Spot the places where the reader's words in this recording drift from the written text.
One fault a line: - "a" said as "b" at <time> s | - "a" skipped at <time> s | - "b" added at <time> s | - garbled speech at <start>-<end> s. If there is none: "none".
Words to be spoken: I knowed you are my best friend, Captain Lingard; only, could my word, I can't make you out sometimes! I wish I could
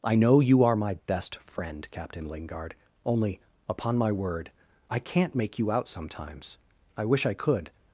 - "knowed" said as "know" at 0.1 s
- "could" said as "upon" at 3.7 s